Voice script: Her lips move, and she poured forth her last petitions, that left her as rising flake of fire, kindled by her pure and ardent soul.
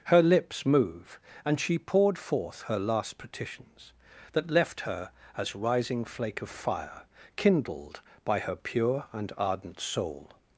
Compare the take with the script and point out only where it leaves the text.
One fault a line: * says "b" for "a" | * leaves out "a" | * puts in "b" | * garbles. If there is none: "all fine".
all fine